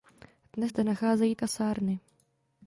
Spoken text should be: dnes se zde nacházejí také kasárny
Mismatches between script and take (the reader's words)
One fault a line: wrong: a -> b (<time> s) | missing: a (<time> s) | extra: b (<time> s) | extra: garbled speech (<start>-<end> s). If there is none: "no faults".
missing: se (0.7 s)
missing: také (1.4 s)